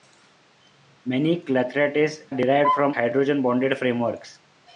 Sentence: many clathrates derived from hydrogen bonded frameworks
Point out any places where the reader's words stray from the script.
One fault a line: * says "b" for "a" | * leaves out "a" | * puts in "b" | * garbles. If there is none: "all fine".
all fine